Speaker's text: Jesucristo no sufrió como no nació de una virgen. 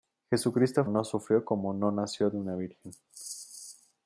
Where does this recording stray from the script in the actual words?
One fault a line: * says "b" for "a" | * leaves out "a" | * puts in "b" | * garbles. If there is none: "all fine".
all fine